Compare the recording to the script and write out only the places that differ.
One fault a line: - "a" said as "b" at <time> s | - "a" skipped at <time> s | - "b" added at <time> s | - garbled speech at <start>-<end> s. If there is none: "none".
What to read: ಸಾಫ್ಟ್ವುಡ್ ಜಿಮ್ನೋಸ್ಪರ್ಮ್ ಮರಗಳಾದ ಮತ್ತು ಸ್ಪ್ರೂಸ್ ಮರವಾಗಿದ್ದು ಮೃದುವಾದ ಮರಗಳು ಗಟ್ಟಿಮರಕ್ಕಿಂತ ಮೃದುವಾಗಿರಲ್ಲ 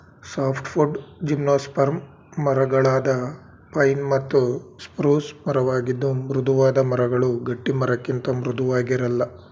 - "ಪೈನ್" added at 3.7 s